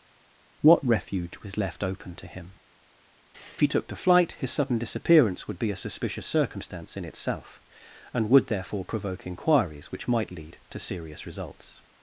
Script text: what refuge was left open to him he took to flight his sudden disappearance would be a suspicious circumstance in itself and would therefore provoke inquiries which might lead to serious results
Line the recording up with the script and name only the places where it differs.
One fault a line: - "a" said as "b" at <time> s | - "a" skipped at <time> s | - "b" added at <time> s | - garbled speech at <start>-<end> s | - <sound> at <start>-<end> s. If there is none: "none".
none